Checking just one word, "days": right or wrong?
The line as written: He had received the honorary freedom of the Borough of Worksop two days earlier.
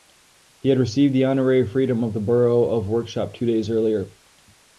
right